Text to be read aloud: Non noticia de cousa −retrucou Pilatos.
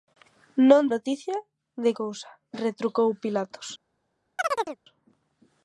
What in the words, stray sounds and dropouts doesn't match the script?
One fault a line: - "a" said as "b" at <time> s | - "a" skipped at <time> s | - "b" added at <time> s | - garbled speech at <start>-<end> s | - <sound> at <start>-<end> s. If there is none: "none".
- chirp at 4.4-4.8 s